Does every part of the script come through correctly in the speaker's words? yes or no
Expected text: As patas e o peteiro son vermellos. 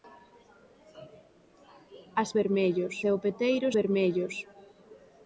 no